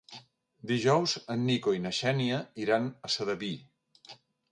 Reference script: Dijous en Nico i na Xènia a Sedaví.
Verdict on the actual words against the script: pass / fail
fail